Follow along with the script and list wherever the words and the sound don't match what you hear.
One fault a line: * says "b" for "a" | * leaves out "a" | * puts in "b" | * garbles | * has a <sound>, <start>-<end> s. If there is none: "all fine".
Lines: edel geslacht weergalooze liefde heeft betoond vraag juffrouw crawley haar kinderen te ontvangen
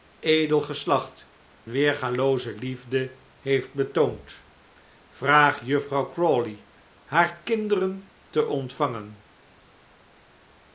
all fine